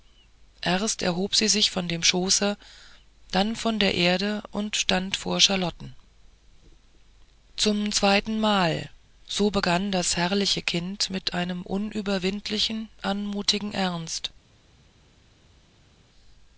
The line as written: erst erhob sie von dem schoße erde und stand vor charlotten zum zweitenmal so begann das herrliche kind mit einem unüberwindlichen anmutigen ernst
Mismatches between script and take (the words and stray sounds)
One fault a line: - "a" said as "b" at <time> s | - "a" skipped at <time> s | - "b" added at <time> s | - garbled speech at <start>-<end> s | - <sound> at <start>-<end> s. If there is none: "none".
- "sich" added at 1.5 s
- "dann von der" added at 3.3 s